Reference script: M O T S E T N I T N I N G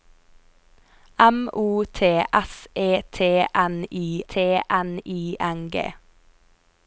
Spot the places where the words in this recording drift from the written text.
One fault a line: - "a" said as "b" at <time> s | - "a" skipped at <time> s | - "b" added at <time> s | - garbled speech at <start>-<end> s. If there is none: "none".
none